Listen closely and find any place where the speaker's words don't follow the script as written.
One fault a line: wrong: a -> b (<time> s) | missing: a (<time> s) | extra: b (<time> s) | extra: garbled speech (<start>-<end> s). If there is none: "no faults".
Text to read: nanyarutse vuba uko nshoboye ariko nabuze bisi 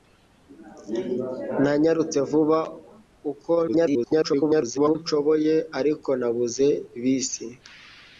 extra: garbled speech (3.7-5.0 s)